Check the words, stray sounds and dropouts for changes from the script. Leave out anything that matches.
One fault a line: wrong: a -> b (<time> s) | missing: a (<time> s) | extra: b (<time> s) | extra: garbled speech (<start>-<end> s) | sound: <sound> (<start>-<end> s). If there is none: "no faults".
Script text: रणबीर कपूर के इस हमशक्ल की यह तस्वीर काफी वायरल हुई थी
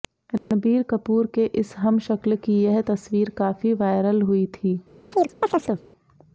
sound: dropout (0.4-0.5 s)
sound: chirp (5.1-5.8 s)